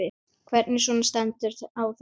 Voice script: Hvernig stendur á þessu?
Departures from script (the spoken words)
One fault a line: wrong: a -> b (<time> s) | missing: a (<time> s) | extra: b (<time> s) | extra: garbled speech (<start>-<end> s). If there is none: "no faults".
extra: svona (0.8 s)